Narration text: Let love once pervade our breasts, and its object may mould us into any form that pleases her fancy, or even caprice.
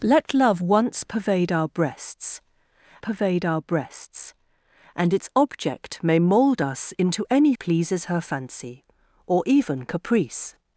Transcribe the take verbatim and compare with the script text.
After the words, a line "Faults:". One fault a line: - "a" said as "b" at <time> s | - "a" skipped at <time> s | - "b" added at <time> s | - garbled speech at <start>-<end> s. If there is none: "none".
Let love once pervade our breasts pervade our breasts, and its object may mould us into any pleases her fancy, or even caprice.
Faults:
- "pervade our breasts" added at 3.0 s
- "form that" skipped at 7.5 s